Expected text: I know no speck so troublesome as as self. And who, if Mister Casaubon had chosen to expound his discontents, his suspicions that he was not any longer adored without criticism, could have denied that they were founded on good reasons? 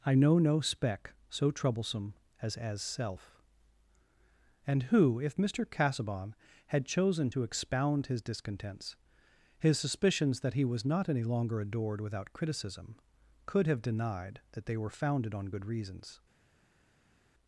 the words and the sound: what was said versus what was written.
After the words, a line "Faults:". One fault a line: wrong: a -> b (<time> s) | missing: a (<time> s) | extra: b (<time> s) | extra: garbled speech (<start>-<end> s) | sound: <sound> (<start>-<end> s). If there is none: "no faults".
I know no speck so troublesome as as self. And who, if Mister Casaubon had chosen to expound his discontents, his suspicions that he was not any longer adored without criticism, could have denied that they were founded on good reasons?
Faults:
no faults